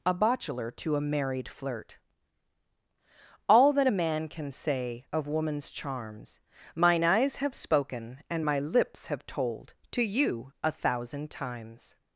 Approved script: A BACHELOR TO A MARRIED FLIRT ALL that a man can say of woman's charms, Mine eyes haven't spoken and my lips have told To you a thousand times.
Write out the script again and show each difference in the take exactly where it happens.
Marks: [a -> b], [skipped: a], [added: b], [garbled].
A BACHELOR TO A MARRIED FLIRT ALL that a man can say of woman's charms, Mine eyes [haven't -> have] spoken and my lips have told To you a thousand times.